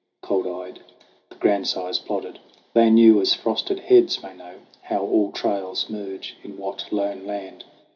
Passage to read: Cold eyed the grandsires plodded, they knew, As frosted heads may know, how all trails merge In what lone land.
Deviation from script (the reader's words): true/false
false